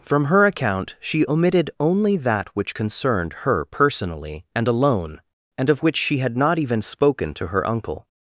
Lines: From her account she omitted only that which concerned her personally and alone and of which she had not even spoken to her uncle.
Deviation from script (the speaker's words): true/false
false